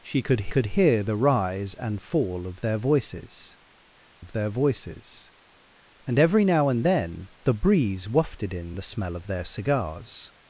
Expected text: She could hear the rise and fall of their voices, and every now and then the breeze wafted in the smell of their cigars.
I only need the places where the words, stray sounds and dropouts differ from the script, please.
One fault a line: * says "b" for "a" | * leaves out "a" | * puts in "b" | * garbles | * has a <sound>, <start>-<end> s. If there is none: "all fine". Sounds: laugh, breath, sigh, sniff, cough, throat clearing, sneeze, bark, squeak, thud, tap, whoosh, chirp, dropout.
* puts in "could"
* puts in "of their voices"